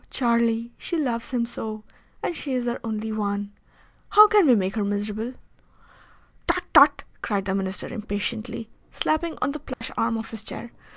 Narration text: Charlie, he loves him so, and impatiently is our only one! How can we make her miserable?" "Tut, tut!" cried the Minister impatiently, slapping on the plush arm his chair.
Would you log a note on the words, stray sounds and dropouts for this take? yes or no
yes